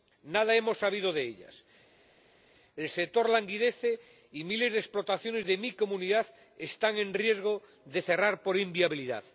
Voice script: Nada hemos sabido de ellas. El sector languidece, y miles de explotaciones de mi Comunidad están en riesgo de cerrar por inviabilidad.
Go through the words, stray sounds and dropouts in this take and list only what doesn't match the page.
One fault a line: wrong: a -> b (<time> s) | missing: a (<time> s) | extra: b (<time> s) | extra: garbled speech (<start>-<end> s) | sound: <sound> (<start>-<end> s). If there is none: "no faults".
no faults